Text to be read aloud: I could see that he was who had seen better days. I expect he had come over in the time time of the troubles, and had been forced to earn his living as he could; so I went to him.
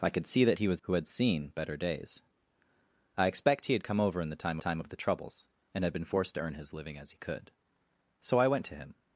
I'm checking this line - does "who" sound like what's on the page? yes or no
yes